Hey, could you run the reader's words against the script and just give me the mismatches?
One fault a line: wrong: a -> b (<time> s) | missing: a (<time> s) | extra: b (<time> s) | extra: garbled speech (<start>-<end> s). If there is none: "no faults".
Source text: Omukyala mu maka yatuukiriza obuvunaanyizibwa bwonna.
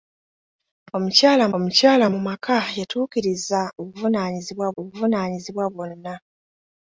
extra: omukyala (1.5 s)
extra: obuvunaanyizibwa (4.8 s)